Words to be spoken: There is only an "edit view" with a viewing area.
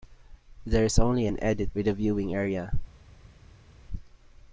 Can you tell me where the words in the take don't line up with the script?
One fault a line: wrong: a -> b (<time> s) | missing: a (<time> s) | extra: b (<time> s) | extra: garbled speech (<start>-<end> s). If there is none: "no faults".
missing: view (1.7 s)